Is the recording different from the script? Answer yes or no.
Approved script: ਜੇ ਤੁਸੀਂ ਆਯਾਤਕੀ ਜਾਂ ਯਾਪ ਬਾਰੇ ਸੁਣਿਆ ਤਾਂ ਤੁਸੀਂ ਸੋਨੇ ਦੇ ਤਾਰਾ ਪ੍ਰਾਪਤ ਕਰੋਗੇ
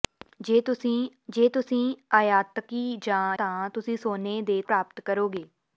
yes